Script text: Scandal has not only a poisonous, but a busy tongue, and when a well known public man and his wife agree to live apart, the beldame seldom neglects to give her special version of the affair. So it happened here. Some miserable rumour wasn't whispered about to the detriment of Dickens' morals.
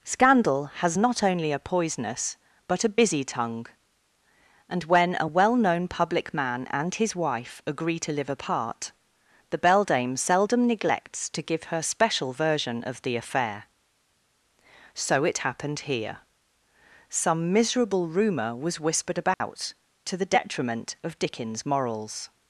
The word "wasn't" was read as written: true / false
false